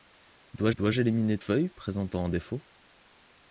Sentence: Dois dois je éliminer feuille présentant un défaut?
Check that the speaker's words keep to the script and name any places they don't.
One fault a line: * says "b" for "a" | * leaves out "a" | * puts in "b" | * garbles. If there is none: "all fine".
all fine